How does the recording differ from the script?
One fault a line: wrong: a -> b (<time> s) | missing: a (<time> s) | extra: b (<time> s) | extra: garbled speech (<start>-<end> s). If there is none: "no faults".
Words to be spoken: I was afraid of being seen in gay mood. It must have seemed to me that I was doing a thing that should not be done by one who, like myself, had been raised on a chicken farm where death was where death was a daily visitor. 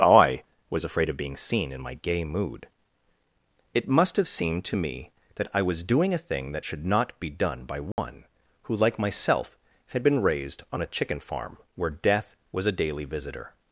extra: my (1.8 s)
missing: where death was (12.7 s)